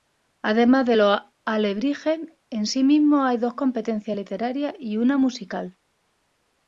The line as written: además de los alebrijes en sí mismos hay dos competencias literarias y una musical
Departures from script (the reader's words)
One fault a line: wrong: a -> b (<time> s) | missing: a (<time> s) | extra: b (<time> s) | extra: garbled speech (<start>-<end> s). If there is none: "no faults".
no faults